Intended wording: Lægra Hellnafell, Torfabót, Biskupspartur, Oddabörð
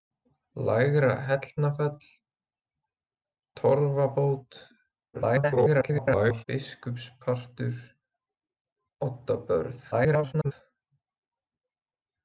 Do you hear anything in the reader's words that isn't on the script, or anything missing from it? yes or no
yes